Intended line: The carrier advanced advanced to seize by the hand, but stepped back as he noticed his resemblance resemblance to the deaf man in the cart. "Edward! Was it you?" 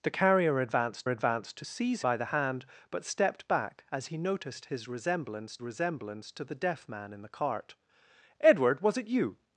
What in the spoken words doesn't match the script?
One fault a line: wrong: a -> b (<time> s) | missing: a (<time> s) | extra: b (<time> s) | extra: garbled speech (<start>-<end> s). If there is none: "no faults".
no faults